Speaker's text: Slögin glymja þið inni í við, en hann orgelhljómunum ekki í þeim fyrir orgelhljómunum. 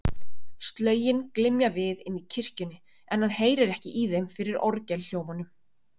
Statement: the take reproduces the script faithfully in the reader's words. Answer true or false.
false